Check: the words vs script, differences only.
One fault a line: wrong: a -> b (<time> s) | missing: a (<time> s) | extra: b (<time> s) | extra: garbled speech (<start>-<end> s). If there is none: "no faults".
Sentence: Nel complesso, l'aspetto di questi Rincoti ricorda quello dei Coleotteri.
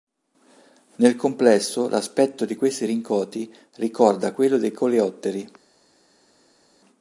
no faults